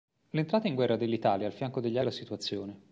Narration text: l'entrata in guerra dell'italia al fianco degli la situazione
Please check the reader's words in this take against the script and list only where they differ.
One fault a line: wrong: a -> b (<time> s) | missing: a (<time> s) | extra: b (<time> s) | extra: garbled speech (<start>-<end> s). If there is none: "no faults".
no faults